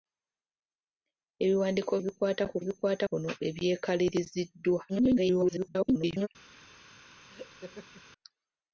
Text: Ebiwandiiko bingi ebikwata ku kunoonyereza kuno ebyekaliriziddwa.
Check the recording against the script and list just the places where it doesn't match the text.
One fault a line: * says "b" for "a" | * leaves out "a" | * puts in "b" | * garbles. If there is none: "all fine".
* leaves out "bingi"
* says "ebikwata" for "kunoonyereza"
* garbles